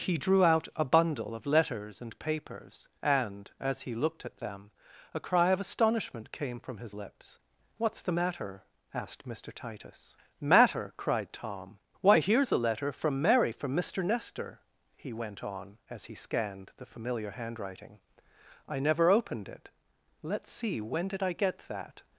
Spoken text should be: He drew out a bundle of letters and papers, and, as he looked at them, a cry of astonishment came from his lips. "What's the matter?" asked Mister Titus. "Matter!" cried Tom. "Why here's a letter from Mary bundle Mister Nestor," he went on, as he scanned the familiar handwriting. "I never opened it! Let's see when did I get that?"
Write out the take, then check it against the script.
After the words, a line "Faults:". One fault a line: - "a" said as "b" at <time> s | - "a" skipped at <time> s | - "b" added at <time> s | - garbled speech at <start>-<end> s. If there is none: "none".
He drew out a bundle of letters and papers, and, as he looked at them, a cry of astonishment came from his lips. "What's the matter?" asked Mister Titus. "Matter!" cried Tom. "Why here's a letter from Mary from Mister Nestor," he went on, as he scanned the familiar handwriting. "I never opened it! Let's see when did I get that?"
Faults:
- "bundle" said as "from" at 13.5 s